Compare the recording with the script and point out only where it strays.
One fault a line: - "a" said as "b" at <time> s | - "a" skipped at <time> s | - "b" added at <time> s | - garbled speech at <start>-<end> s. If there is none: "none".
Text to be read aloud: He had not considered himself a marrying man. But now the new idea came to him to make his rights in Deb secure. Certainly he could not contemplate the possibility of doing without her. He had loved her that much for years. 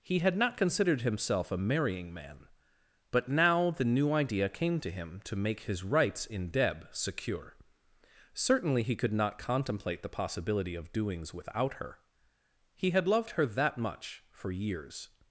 - "doing" said as "doings" at 10.9 s